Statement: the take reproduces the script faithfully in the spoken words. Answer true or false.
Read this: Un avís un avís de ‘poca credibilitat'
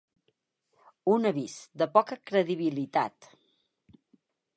false